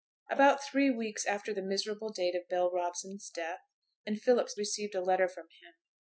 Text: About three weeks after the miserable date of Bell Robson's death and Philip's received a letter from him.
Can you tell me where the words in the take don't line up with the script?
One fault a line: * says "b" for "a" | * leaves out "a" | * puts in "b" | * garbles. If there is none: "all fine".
all fine